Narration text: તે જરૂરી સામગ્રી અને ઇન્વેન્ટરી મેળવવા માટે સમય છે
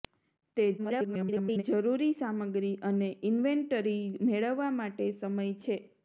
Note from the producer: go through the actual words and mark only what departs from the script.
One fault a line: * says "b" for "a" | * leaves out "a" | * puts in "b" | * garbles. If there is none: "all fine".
* garbles